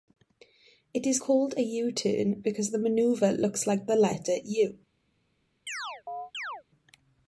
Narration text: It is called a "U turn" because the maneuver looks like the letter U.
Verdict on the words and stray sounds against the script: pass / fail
fail